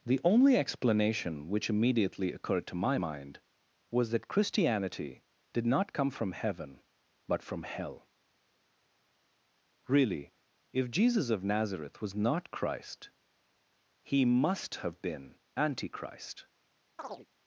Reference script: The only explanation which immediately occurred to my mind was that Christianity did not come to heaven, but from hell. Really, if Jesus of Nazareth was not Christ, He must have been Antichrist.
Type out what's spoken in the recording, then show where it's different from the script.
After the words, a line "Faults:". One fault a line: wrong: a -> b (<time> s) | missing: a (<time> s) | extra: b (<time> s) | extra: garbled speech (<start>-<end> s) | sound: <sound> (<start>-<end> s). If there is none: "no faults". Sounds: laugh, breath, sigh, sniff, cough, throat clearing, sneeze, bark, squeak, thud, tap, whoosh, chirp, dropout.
The only explanation which immediately occurred to my mind was that Christianity did not come from heaven, but from hell. Really, if Jesus of Nazareth was not Christ, He must have been Antichrist.
Faults:
wrong: to -> from (6.1 s)
sound: chirp (17.0-17.3 s)